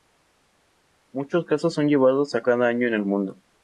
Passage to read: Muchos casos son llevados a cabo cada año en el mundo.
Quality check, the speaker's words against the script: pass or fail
fail